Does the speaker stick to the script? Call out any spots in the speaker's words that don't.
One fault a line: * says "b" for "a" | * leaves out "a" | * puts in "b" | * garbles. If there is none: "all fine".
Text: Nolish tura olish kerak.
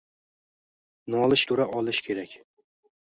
all fine